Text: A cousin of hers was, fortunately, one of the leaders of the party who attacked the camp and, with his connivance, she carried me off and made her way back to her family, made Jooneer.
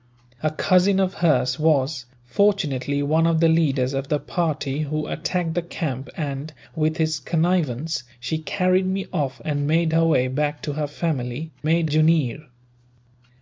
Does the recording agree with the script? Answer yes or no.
yes